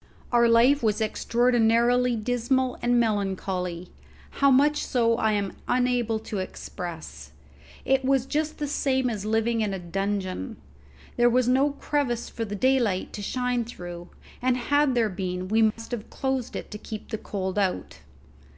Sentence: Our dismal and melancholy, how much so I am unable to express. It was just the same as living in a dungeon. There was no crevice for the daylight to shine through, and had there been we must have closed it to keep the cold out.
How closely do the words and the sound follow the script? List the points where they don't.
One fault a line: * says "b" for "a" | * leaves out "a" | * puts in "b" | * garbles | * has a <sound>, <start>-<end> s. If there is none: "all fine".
* puts in "life was extraordinarily"
* has a dropout, 15.7-15.8 s